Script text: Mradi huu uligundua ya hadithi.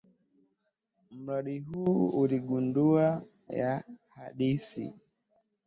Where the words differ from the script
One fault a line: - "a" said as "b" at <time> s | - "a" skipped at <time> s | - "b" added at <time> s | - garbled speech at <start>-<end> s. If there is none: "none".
none